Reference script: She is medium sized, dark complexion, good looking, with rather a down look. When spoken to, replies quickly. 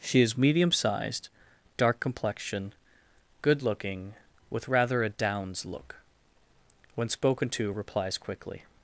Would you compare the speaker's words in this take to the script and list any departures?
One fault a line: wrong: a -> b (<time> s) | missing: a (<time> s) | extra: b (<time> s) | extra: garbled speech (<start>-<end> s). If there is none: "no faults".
wrong: down -> downs (5.1 s)